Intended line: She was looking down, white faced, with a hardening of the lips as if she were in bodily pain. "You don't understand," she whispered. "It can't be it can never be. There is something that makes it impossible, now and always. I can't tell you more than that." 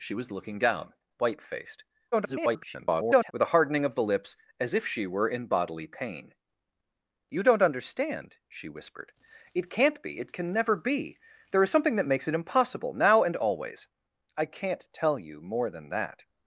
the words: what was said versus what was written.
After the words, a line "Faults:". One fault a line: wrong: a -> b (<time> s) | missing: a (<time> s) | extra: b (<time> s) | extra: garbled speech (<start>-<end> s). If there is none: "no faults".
She was looking down, white faced, [garbled] with a hardening of the lips as if she were in bodily pain. "You don't understand," she whispered. "It can't be it can never be. There is something that makes it impossible, now and always. I can't tell you more than that."
Faults:
extra: garbled speech (2.1-3.3 s)